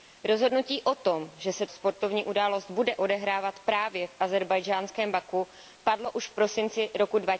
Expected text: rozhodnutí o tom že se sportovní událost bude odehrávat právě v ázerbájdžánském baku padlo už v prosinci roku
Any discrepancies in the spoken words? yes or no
no